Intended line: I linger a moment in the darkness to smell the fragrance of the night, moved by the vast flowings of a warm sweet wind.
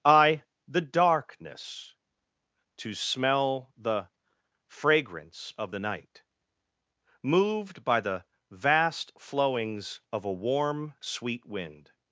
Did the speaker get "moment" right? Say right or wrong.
wrong